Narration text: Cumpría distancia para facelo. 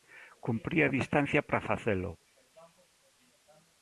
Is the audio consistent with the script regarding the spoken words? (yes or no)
yes